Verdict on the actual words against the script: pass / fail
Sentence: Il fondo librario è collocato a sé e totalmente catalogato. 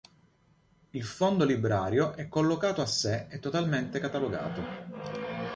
pass